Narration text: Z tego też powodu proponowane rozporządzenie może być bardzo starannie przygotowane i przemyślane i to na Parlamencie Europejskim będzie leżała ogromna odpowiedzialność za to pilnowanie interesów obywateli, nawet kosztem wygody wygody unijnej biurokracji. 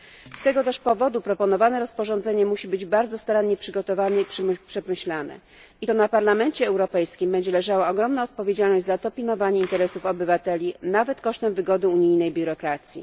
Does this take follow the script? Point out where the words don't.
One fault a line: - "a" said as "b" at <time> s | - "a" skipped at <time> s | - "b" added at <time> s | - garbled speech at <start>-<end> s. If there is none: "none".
- "może" said as "musi" at 2.5 s
- "wygody" skipped at 11.9 s